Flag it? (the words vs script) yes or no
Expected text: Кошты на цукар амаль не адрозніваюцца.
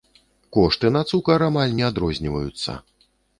no